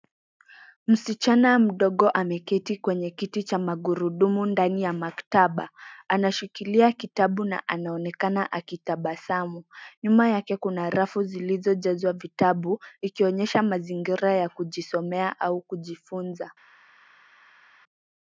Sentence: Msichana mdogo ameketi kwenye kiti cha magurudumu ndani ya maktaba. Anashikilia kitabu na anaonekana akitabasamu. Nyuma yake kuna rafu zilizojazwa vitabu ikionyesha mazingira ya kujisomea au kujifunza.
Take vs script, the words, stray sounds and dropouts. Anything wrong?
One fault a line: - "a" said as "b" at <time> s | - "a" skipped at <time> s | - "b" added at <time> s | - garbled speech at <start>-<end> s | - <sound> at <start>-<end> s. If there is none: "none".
none